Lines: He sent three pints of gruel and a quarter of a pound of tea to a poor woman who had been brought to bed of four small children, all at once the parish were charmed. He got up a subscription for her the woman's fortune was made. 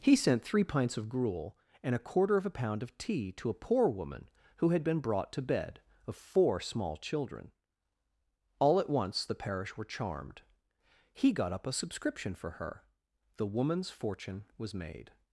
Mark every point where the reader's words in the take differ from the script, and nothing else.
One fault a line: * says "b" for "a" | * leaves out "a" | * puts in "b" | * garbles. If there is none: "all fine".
all fine